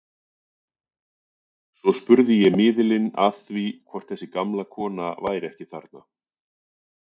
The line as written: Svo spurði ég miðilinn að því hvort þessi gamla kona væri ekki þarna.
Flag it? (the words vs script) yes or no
no